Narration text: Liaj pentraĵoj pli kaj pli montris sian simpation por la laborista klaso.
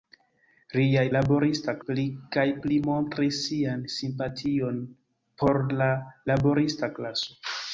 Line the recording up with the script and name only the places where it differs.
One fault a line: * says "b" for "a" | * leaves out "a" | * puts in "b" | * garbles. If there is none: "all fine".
* says "laborista" for "pentraĵoj"